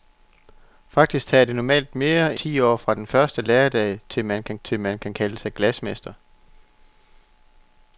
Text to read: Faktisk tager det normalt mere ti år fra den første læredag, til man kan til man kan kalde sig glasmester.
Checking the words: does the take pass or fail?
pass